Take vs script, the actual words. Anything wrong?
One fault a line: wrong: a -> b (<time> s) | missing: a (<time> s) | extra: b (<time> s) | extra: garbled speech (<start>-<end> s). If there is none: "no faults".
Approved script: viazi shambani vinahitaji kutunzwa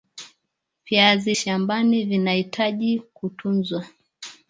no faults